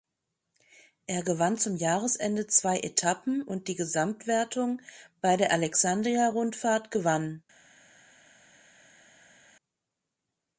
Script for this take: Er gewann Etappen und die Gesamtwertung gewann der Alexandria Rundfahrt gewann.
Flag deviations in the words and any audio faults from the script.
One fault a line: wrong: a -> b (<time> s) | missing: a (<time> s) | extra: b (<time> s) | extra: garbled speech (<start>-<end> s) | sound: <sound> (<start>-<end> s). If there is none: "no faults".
extra: zum Jahresende zwei (1.6 s)
wrong: gewann -> bei (5.2 s)